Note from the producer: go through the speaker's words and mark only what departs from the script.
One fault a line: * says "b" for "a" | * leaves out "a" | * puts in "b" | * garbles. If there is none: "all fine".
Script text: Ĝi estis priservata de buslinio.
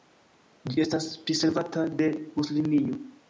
* says "estas" for "estis"